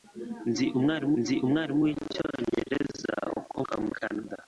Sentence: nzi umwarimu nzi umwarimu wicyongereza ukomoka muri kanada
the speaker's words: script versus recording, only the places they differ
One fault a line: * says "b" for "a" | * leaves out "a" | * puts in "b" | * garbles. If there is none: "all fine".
all fine